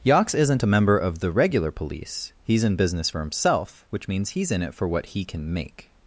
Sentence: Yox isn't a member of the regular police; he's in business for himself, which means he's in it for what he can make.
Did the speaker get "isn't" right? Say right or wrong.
right